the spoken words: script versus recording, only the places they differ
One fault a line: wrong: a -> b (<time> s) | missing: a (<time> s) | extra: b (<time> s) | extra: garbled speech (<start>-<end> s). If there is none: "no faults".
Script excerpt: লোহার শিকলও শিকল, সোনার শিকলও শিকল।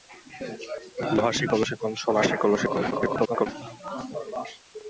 extra: garbled speech (2.9-3.5 s)